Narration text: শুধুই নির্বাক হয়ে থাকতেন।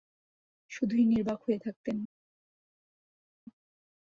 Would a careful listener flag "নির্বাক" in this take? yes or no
no